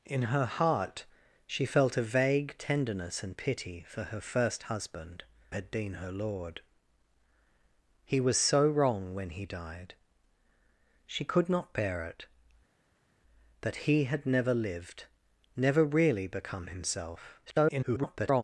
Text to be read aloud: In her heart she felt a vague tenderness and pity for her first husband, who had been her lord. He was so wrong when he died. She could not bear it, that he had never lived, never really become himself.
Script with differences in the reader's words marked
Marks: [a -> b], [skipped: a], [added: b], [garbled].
In her heart she felt a vague tenderness and pity for her first husband, [skipped: who] had been her lord. He was so wrong when he died. She could not bear it, that he had never lived, never really become himself. [garbled]